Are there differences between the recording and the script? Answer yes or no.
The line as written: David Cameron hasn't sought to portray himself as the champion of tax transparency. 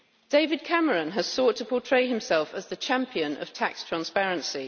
yes